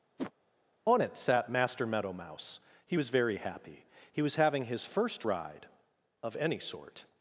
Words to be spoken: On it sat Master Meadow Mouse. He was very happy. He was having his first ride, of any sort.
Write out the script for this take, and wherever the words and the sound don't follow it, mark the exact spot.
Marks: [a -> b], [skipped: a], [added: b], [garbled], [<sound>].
[whoosh] On it sat Master Meadow Mouse. He was very happy. He was having his first ride, of any sort.